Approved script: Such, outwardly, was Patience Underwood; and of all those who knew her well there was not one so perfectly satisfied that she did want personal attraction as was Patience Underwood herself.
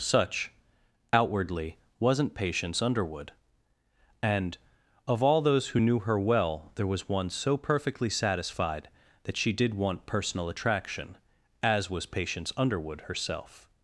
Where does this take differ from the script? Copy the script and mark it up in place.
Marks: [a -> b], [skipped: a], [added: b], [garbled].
Such, outwardly, [was -> wasn't] Patience Underwood; and of all those who knew her well there was [skipped: not] one so perfectly satisfied that she did want personal attraction as was Patience Underwood herself.